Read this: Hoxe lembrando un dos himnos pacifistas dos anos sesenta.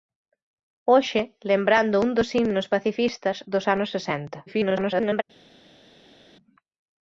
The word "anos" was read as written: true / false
true